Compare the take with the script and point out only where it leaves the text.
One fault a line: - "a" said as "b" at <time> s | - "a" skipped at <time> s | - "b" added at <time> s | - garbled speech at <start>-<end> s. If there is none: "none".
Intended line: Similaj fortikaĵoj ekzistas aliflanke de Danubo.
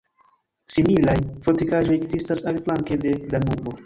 none